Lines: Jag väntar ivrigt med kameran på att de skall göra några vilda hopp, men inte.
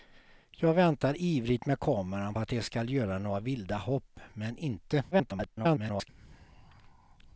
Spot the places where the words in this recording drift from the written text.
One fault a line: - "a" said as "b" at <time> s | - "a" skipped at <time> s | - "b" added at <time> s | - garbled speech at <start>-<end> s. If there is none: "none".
- "på" skipped at 2.3 s
- garbled speech at 5.1-6.1 s